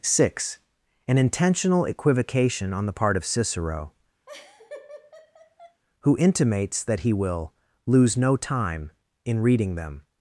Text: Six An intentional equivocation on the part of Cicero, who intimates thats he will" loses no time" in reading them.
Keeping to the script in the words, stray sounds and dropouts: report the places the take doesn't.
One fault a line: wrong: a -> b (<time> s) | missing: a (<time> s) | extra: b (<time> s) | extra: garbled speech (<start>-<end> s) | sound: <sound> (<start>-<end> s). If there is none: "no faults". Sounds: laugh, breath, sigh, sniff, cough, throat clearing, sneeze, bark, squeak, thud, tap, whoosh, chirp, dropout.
sound: laugh (4.3-5.8 s)
wrong: thats -> that (6.8 s)
wrong: loses -> lose (7.8 s)